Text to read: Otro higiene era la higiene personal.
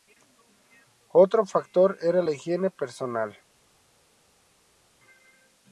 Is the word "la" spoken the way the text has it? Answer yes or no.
yes